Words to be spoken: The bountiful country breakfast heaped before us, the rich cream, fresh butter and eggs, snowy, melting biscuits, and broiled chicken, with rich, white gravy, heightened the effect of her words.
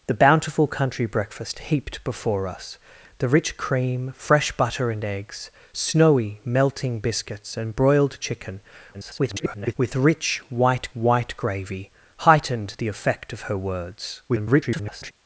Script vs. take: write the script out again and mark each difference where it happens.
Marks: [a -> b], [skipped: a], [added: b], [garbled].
The bountiful country breakfast heaped before us, the rich cream, fresh butter and eggs, snowy, melting biscuits, and broiled chicken, [garbled] with rich, white [added: white] gravy, heightened the effect of her words. [garbled]